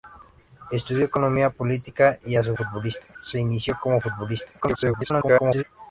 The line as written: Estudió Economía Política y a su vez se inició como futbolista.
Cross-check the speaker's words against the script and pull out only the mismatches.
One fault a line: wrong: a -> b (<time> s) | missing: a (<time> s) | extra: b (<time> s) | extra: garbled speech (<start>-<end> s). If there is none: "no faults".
wrong: vez -> futbolista (2.5 s)
extra: garbled speech (4.6-5.6 s)